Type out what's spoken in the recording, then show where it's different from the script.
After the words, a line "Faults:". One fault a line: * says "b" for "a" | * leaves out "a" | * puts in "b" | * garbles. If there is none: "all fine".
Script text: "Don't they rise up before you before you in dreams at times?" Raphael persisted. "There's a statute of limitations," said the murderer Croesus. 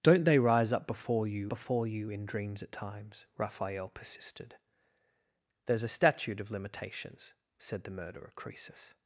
"Don't they rise up before you before you in dreams at times?" Raphael persisted. "There's a statute of limitations," said the murderer Croesus.
Faults:
all fine